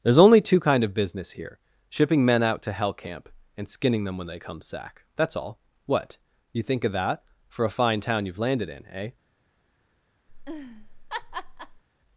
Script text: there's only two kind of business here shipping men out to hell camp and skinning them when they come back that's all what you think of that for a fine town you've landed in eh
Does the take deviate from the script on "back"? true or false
true